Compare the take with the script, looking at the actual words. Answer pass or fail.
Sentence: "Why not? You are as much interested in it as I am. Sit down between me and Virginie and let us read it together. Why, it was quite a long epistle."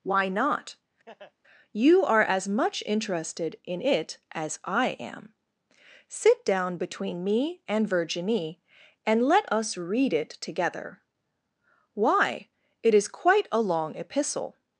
fail